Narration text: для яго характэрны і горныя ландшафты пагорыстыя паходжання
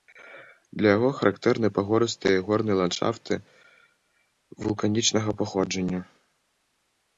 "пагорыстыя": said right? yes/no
no